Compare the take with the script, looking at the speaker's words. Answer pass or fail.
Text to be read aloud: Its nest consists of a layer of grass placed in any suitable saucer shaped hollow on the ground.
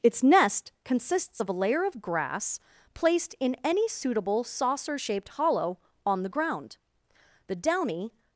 fail